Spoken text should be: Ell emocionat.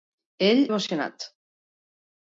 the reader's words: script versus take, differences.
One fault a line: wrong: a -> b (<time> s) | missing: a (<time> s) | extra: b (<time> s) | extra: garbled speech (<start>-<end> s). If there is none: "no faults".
no faults